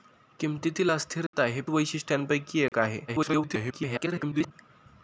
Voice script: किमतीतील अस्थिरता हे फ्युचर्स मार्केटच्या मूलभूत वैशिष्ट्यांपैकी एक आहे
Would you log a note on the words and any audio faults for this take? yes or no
yes